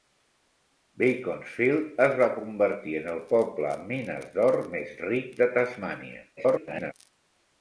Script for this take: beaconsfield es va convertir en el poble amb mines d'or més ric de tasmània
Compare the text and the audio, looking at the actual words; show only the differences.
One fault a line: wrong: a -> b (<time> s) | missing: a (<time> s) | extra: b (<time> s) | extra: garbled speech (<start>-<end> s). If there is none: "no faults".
extra: garbled speech (6.4-6.9 s)